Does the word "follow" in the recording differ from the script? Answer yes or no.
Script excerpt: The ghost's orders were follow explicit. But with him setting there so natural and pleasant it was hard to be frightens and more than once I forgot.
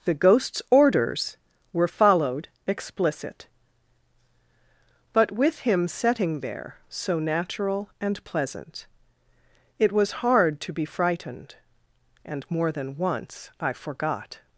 yes